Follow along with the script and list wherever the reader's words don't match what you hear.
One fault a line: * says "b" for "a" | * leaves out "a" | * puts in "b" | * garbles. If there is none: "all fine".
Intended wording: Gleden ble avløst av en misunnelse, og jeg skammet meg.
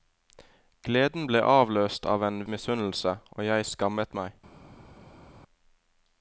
all fine